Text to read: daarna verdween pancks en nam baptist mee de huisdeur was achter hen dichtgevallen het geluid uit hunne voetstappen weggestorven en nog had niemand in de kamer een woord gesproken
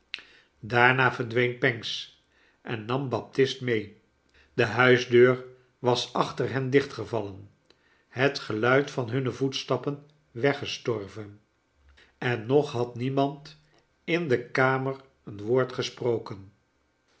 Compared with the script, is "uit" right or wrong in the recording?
wrong